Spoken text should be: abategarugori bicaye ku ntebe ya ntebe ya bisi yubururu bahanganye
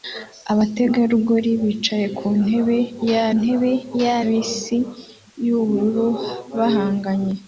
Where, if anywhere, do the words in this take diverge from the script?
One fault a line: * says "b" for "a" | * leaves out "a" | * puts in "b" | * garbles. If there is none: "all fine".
all fine